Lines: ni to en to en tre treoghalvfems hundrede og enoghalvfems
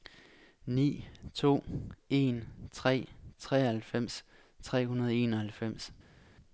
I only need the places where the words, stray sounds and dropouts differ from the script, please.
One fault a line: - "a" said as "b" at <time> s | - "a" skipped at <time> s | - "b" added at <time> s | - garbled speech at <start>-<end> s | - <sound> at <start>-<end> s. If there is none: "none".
- "to en" said as "tre treoghalvfems" at 2.7 s
- "treoghalvfems" skipped at 4.9 s